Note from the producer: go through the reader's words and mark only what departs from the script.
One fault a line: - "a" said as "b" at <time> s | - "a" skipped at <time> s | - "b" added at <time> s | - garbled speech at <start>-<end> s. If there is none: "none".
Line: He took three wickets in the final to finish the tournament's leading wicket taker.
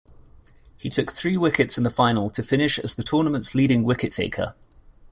- "as" added at 2.8 s